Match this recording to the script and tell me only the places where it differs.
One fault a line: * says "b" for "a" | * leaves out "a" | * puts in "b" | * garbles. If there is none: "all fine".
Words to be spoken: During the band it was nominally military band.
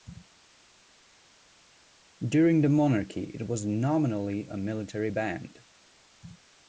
* says "monarchy" for "band"
* puts in "a"